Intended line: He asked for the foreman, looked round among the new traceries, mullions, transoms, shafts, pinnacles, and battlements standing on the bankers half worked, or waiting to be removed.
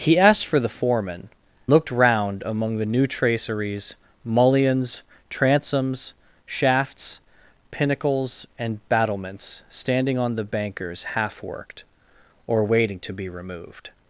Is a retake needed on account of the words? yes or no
no